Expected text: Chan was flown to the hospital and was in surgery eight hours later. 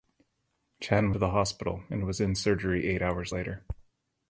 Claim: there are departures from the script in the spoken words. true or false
true